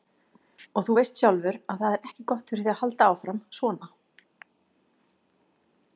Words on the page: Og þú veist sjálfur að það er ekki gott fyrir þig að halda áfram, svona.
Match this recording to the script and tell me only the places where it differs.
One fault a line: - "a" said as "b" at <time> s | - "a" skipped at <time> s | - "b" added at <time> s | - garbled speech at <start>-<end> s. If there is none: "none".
none